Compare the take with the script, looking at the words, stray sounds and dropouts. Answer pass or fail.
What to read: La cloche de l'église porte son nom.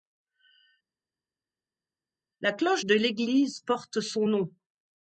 pass